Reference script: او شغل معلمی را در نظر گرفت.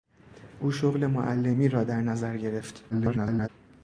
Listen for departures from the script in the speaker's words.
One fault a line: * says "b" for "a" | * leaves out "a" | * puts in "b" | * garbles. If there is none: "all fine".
* garbles